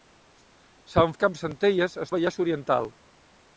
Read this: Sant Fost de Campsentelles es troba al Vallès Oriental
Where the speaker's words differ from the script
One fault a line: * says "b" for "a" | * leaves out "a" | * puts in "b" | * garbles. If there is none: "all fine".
* leaves out "Fost"
* leaves out "troba"